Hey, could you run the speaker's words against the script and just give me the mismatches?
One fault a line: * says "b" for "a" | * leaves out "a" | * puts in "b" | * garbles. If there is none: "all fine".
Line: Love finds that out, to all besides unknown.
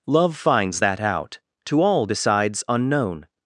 all fine